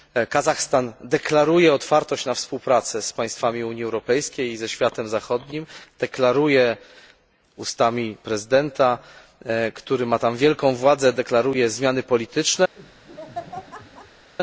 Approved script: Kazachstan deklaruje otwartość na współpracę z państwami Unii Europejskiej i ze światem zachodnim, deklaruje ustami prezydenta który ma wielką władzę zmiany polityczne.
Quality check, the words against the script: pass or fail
fail